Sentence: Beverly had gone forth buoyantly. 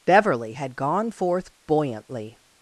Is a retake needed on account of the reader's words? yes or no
no